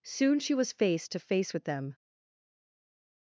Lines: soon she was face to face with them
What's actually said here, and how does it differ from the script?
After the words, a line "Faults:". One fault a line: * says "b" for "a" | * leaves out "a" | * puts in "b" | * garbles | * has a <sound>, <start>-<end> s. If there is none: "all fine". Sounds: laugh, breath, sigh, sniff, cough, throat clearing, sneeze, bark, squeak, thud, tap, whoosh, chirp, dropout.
soon she was face to face with them
Faults:
all fine